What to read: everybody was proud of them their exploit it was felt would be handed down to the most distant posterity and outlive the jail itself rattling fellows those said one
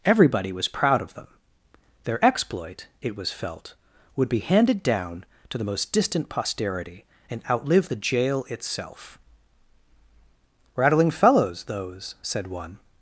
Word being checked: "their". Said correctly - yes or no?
yes